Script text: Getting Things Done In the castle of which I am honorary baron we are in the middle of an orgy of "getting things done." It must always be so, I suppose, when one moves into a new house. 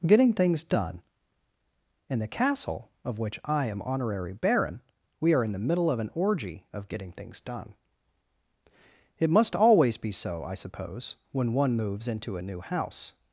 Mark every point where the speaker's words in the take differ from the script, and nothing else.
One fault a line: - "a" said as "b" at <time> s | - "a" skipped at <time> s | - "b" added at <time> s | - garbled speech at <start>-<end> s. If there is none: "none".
none